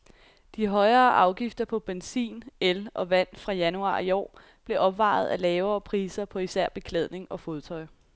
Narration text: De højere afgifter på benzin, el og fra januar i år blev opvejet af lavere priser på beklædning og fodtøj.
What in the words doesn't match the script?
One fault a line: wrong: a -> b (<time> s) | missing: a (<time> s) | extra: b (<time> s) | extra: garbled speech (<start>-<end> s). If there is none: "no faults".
extra: vand (3.1 s)
extra: især (6.4 s)